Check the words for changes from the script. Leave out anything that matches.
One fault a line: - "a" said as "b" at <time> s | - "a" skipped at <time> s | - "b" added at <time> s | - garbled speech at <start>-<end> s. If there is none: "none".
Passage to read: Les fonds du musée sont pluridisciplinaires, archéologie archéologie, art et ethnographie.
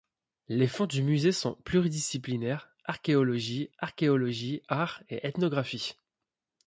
none